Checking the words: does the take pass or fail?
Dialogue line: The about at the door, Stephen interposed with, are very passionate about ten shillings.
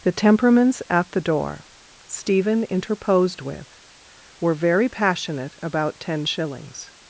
fail